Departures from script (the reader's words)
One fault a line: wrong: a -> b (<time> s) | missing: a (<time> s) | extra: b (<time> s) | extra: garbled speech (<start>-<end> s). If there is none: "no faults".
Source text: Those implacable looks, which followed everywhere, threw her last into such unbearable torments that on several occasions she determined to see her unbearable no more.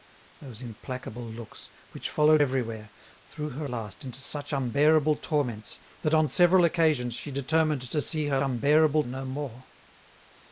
no faults